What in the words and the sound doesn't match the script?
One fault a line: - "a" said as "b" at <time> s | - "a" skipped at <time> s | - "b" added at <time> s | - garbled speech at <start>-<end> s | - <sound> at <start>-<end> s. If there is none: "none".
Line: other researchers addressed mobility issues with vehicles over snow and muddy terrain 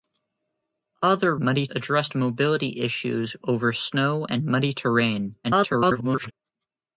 - "researchers" said as "muddy" at 1.4 s
- "with vehicles" skipped at 3.3 s
- garbled speech at 5.4-6.3 s